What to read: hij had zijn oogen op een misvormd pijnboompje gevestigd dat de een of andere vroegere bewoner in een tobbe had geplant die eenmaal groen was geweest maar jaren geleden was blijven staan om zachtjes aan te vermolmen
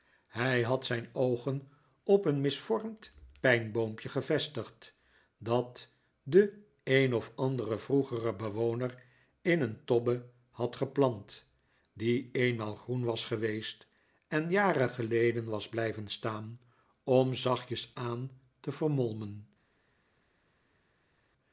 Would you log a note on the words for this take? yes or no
yes